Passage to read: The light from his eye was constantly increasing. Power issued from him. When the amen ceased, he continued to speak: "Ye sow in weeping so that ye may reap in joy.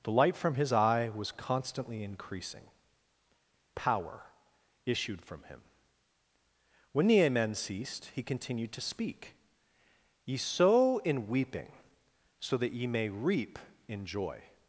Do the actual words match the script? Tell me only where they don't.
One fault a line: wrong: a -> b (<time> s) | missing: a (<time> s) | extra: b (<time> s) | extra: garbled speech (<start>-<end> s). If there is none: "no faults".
no faults